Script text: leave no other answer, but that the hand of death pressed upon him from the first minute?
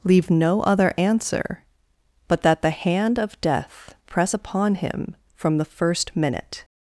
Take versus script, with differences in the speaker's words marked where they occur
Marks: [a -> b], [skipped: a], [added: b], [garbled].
leave no other answer, but that the hand of death [pressed -> press] upon him from the first minute?